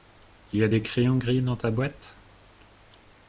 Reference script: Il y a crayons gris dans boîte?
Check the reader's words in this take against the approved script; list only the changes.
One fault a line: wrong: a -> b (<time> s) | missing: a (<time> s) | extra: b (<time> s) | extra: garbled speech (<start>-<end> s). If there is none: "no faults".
extra: des (0.7 s)
extra: ta (1.6 s)